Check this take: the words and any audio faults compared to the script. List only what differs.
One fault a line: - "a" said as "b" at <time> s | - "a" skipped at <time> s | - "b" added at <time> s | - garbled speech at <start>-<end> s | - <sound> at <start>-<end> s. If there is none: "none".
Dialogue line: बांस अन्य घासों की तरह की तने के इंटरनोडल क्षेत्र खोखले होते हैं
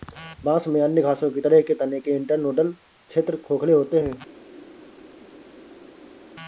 - "में" added at 0.7 s
- "की" said as "के" at 1.6 s